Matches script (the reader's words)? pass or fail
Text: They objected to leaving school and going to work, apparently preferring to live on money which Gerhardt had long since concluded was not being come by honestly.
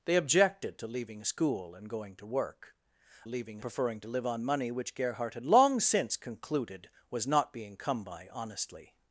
fail